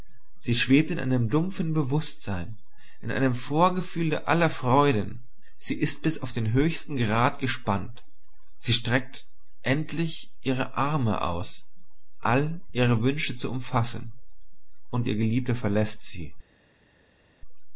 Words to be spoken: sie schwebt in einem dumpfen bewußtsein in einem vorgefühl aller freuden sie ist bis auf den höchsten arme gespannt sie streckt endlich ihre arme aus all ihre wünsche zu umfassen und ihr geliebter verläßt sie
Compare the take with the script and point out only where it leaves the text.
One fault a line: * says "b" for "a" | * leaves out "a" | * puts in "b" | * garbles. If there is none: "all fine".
* says "grad" for "arme"